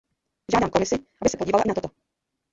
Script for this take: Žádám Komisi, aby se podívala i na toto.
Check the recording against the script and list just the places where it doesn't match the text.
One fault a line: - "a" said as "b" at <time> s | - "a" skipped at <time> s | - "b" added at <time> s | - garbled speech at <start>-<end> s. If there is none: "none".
none